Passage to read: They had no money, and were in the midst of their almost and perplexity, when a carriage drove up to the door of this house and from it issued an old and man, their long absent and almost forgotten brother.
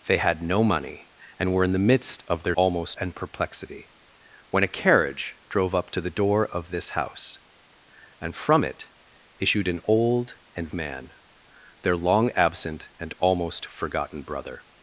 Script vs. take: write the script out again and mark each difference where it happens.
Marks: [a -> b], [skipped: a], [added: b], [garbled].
They had no money, and were in the midst of their almost and perplexity, when a carriage drove up to the door of this house and from it issued an old and man, their long absent and almost forgotten brother.